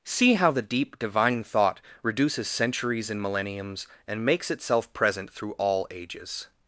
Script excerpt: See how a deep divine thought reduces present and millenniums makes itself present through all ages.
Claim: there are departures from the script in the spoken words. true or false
true